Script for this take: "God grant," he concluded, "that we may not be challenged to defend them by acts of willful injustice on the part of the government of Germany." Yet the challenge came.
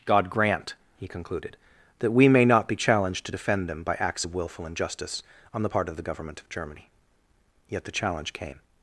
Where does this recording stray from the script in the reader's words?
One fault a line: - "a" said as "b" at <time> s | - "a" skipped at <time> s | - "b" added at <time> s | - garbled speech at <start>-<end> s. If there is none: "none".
none